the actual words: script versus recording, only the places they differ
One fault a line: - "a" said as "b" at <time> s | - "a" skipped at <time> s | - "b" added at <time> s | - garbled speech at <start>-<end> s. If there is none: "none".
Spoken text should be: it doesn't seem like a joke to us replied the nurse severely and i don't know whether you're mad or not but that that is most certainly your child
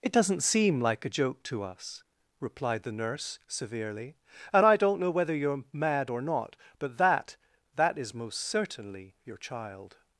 none